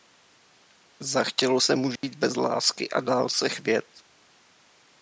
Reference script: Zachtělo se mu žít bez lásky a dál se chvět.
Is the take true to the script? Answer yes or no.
yes